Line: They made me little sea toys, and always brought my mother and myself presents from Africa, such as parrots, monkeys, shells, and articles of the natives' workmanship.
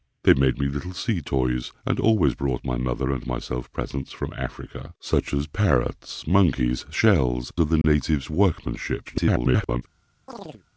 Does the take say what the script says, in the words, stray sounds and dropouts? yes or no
no